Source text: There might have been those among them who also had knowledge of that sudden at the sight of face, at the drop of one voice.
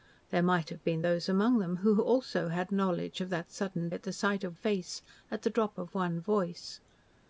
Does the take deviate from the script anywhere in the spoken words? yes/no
no